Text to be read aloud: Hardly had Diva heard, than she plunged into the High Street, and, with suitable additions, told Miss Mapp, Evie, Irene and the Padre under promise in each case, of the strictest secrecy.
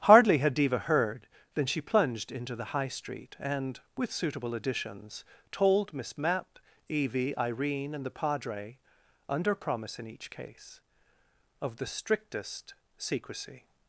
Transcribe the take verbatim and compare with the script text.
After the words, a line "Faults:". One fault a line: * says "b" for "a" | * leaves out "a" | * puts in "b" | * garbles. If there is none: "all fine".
Hardly had Diva heard, than she plunged into the High Street, and, with suitable additions, told Miss Mapp, Evie, Irene and the Padre under promise in each case, of the strictest secrecy.
Faults:
all fine